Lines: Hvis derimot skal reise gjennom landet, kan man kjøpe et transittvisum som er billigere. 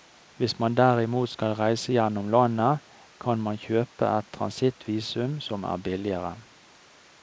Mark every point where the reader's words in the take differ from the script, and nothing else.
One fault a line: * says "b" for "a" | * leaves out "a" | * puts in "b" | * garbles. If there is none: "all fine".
* puts in "man"